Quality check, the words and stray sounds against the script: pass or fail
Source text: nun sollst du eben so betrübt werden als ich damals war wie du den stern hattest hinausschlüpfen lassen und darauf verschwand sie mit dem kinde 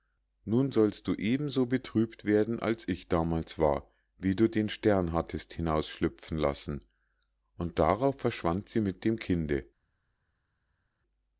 pass